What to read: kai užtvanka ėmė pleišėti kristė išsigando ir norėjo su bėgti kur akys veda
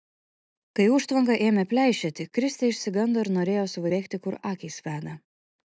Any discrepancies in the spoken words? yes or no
no